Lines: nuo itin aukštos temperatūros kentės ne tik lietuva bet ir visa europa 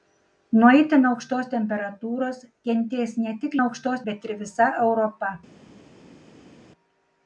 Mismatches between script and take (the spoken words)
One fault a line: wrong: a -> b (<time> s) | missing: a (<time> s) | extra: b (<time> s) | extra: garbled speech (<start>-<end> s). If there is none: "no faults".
wrong: lietuva -> aukštos (3.6 s)